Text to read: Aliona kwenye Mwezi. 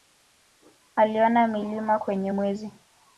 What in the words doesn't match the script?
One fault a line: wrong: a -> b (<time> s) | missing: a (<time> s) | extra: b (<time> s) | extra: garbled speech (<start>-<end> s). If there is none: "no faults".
extra: milima (1.5 s)